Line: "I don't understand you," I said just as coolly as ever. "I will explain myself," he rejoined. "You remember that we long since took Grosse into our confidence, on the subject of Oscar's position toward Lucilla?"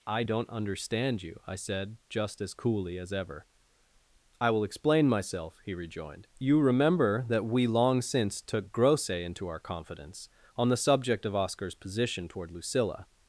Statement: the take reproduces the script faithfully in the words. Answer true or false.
true